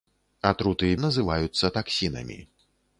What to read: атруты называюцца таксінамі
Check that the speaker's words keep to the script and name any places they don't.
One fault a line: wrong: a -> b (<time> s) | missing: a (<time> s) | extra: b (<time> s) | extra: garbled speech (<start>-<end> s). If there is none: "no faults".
no faults